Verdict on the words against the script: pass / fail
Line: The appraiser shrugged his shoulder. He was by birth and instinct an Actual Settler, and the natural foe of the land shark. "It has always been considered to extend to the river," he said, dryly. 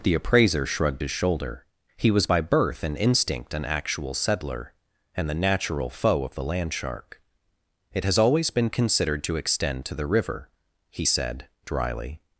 pass